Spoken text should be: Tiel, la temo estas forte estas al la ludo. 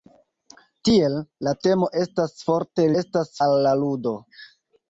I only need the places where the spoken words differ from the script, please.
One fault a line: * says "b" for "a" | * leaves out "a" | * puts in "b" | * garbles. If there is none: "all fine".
all fine